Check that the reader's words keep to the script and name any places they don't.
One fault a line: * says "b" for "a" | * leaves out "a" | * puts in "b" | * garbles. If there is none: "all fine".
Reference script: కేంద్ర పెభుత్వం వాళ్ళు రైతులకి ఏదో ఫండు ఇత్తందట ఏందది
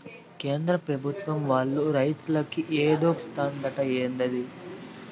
* leaves out "ఫండు"